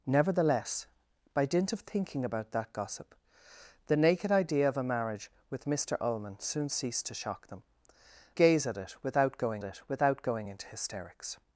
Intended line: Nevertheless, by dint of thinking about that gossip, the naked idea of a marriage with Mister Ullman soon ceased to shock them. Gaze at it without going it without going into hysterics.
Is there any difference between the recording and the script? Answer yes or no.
no